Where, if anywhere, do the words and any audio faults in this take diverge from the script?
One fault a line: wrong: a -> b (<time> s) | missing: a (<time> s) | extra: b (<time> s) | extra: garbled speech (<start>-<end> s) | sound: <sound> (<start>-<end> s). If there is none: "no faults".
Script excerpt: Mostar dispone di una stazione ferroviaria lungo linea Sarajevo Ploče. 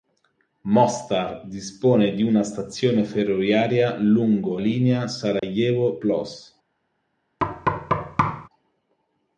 sound: dropout (5.4-5.4 s)
sound: thud (7.4-8.5 s)